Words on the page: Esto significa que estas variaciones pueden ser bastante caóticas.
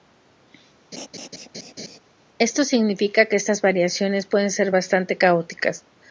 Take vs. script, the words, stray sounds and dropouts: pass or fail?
fail